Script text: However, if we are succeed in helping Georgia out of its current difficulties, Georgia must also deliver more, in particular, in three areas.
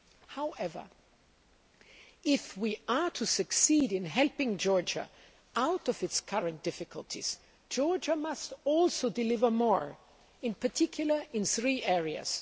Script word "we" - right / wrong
right